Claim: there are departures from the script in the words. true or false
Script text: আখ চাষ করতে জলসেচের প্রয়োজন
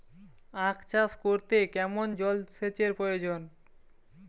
true